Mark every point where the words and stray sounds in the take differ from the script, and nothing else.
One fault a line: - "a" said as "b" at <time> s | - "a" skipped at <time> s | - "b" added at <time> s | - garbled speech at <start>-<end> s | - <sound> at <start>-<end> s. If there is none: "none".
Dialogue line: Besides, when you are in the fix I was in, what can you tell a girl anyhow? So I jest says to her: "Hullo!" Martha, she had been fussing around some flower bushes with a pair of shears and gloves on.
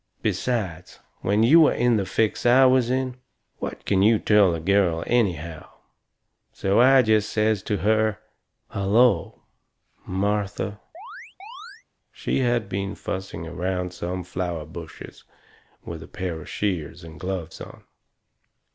- chirp at 10.9-11.8 s